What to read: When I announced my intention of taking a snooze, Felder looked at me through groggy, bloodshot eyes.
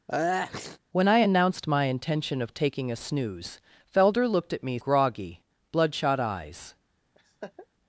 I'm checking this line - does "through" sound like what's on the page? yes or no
no